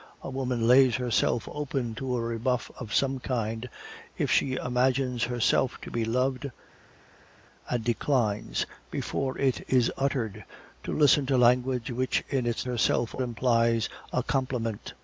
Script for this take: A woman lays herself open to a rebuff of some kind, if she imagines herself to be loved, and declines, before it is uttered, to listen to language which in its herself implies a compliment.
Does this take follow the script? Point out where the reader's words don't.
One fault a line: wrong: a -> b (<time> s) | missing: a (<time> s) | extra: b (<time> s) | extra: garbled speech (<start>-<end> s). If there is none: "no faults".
no faults